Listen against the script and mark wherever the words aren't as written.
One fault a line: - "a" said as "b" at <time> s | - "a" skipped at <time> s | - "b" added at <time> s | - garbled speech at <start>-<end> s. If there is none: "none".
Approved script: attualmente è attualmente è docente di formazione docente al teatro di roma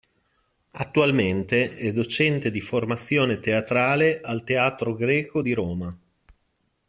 - "attualmente è" skipped at 1.9 s
- "docente" said as "teatrale" at 3.4 s
- "greco" added at 5.0 s